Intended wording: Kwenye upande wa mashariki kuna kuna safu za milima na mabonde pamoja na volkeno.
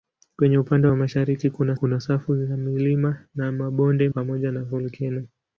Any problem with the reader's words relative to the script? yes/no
no